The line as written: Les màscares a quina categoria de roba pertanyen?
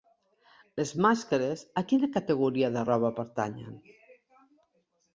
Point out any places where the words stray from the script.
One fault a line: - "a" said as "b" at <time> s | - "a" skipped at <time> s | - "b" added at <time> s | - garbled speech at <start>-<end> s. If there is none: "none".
none